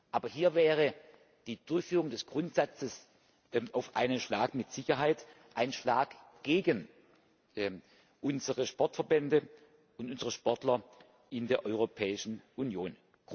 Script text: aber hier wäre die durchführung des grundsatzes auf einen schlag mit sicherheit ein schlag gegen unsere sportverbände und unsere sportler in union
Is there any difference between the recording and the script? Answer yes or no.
yes